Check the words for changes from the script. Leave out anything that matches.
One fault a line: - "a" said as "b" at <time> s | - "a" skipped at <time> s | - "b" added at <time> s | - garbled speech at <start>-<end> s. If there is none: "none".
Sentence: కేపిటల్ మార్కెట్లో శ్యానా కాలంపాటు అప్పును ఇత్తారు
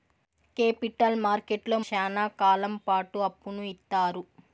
none